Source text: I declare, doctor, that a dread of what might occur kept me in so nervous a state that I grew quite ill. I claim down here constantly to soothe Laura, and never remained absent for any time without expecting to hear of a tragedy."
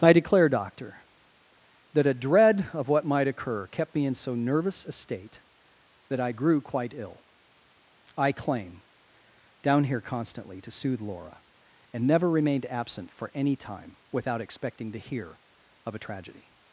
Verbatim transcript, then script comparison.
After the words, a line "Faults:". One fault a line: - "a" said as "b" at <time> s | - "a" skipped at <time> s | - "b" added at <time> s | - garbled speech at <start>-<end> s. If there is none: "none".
I declare, doctor, that a dread of what might occur kept me in so nervous a state that I grew quite ill. I claim down here constantly to soothe Laura, and never remained absent for any time without expecting to hear of a tragedy."
Faults:
none